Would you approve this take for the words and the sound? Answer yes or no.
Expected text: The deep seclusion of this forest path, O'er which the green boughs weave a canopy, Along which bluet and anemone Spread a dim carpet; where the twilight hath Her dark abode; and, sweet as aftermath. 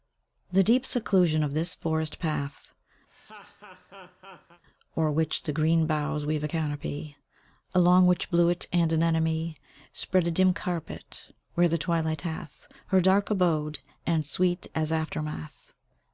no